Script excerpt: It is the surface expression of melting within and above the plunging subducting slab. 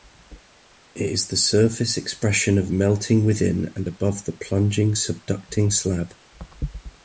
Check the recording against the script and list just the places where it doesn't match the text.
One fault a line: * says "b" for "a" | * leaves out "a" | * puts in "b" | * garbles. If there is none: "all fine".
all fine